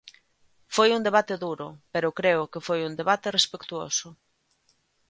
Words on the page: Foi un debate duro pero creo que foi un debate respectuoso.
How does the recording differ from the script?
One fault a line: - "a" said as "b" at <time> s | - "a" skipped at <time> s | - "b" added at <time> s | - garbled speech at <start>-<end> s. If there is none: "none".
none